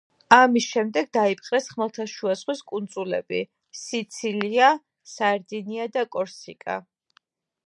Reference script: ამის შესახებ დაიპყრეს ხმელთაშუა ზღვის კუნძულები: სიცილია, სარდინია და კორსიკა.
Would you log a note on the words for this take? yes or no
yes